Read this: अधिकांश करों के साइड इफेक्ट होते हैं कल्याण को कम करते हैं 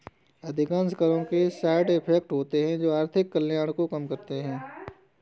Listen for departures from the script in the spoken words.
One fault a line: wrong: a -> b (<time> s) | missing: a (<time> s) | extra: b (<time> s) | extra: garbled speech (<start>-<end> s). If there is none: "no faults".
extra: जो आर्थिक (2.8 s)